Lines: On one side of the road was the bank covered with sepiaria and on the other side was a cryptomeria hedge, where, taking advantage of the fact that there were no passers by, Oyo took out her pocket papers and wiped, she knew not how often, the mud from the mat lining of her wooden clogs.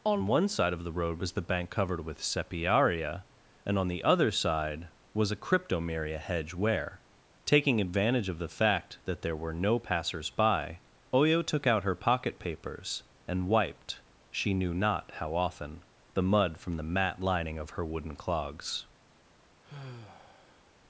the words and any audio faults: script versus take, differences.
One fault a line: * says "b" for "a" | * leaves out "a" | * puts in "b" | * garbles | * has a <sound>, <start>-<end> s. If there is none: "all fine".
* has a sigh, 19.6-20.7 s